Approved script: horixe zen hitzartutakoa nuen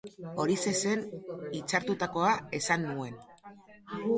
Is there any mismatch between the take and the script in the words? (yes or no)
yes